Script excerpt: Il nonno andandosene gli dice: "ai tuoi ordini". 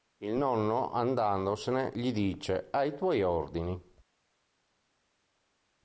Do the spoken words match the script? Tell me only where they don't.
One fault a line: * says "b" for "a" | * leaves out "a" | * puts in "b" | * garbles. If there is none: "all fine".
all fine